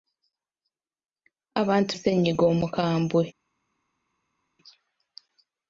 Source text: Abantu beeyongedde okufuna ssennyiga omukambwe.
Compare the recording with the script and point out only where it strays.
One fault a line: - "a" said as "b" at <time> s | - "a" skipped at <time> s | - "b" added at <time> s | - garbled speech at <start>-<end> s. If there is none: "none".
- "beeyongedde okufuna" skipped at 1.9 s